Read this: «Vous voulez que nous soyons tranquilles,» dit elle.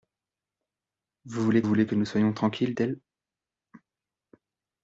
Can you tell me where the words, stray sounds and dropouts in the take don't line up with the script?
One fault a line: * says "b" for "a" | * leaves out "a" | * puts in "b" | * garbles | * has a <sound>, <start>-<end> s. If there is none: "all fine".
* puts in "voulez"
* leaves out "dit"